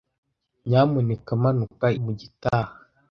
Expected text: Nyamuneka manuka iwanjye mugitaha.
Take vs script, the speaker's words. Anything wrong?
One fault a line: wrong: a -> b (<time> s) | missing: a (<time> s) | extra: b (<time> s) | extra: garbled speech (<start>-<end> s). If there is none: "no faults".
missing: iwanjye (1.9 s)